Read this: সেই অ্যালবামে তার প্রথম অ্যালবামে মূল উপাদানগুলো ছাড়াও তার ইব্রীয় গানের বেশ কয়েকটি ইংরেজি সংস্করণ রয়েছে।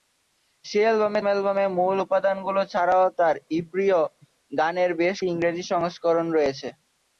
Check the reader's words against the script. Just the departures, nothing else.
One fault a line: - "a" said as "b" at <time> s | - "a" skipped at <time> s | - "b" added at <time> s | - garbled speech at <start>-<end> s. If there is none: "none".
- "তার প্রথম" skipped at 1.2 s
- "কয়েকটি" skipped at 5.2 s